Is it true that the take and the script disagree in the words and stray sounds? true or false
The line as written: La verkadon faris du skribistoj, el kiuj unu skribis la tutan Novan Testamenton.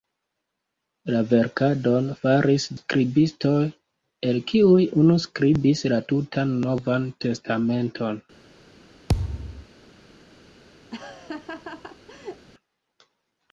true